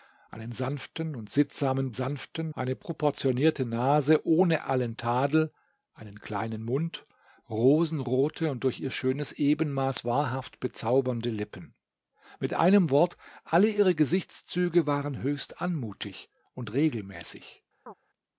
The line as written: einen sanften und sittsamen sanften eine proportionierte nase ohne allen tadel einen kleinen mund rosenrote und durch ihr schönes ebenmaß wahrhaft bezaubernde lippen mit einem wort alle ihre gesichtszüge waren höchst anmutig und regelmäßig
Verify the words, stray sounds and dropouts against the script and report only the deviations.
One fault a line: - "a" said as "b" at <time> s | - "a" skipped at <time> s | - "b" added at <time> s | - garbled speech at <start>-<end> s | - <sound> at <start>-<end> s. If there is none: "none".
- chirp at 17.9-17.9 s